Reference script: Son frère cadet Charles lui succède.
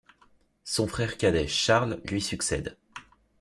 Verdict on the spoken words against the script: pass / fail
pass